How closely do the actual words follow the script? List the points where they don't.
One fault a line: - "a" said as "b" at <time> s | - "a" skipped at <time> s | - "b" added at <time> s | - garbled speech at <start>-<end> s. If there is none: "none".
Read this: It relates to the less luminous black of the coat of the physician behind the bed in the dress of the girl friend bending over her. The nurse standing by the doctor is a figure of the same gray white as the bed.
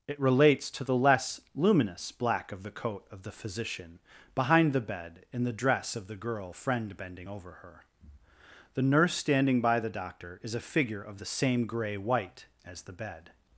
none